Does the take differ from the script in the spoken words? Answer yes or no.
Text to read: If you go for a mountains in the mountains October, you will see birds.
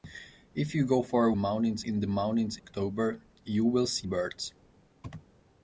no